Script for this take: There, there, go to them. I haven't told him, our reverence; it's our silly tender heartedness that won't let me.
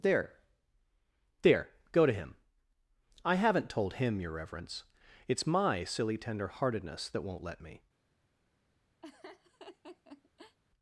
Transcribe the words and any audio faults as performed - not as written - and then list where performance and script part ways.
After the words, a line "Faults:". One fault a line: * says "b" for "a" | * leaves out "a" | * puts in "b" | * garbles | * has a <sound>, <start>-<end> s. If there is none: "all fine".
There, there, go to him. I haven't told him, your reverence; it's my silly tender heartedness that won't let me.
Faults:
* says "him" for "them"
* says "your" for "our"
* says "my" for "our"
* has a laugh, 9.0-10.6 s